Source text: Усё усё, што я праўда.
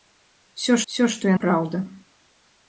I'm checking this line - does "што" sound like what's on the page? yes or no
yes